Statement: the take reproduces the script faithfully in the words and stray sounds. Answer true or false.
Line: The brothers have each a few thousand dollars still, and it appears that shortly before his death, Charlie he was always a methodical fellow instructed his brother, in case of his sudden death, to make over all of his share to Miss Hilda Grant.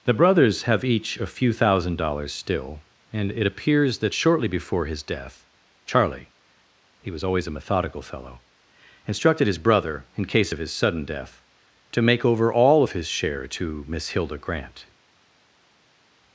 true